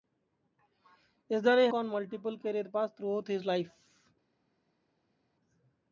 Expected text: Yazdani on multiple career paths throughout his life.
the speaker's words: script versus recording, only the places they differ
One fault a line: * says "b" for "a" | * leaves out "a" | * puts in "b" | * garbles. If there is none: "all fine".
all fine